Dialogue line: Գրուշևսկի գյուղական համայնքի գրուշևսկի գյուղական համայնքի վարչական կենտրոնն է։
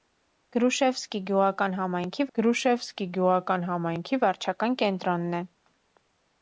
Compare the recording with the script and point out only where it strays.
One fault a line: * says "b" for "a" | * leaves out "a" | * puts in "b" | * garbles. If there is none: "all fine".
all fine